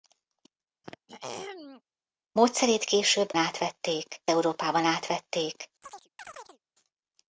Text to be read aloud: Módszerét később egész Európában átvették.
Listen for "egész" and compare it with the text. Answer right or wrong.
wrong